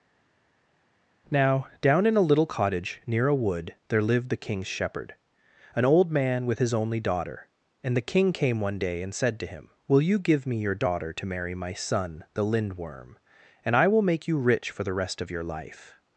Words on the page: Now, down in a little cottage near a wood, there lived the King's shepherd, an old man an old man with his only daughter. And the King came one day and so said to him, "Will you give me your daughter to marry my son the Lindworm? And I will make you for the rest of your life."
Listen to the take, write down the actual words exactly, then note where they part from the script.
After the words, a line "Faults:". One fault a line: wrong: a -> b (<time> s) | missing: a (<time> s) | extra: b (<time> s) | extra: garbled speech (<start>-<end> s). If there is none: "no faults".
Now, down in a little cottage near a wood, there lived the King's shepherd, an old man with his only daughter. And the King came one day and said to him, "Will you give me your daughter to marry my son the Lindworm? And I will make you rich for the rest of your life."
Faults:
missing: an old man (6.5 s)
missing: so (9.1 s)
extra: rich (14.4 s)